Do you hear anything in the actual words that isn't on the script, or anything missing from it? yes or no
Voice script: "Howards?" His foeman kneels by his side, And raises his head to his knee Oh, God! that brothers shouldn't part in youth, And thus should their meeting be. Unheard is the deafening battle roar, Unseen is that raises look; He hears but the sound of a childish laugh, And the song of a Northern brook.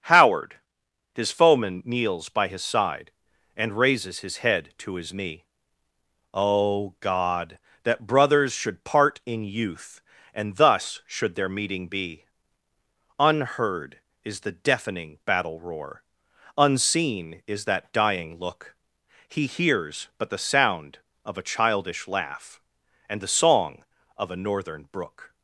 yes